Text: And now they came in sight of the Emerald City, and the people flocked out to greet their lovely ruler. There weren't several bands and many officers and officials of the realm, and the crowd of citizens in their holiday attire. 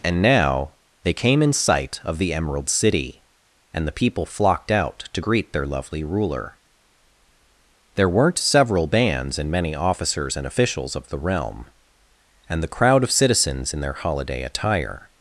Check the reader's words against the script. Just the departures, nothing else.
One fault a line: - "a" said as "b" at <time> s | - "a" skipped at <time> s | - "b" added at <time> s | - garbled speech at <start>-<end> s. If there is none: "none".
none